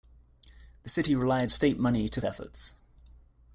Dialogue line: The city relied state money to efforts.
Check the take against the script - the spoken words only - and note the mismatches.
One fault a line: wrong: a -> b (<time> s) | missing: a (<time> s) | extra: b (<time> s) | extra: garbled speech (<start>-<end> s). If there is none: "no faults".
no faults